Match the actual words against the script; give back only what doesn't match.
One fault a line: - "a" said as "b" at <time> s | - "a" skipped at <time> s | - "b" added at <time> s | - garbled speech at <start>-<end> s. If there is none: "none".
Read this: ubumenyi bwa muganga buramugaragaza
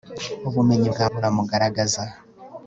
- "muganga" skipped at 1.1 s